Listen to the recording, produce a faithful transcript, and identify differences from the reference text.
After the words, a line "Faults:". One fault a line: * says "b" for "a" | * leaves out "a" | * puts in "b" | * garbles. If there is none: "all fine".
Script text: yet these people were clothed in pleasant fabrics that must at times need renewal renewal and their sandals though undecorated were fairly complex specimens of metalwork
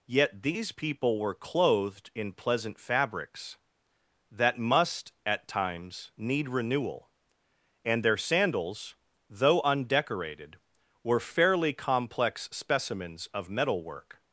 yet these people were clothed in pleasant fabrics that must at times need renewal and their sandals though undecorated were fairly complex specimens of metalwork
Faults:
* leaves out "renewal"